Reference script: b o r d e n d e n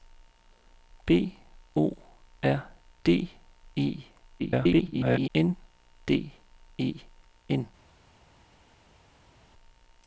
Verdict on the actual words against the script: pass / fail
fail